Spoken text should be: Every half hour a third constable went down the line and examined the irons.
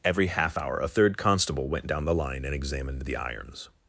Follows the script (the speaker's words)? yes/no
yes